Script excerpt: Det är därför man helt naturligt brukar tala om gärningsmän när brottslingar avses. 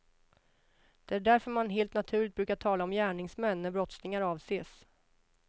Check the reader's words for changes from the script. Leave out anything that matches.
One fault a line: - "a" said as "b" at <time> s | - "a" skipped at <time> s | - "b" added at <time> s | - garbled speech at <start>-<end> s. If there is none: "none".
none